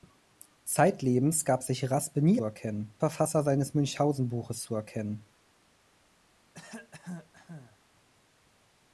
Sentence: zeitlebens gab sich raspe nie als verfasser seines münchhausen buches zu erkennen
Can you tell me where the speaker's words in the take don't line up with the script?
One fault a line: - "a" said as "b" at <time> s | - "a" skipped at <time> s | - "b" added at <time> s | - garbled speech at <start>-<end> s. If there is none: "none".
- "als" said as "erkennen" at 2.4 s